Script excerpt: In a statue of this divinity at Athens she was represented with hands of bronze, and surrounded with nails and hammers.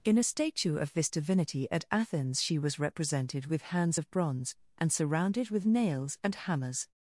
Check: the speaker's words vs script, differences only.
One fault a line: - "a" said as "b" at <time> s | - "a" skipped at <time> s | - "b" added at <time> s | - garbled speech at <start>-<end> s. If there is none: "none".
none